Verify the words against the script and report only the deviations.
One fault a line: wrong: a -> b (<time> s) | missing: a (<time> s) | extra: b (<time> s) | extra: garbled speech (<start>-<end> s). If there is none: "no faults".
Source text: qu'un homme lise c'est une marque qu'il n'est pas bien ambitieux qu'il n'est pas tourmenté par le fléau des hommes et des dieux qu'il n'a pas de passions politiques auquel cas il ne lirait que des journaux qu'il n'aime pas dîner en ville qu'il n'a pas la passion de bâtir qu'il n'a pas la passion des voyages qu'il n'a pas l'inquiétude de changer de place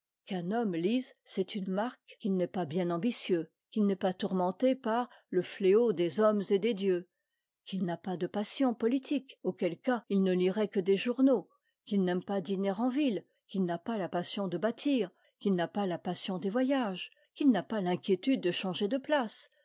no faults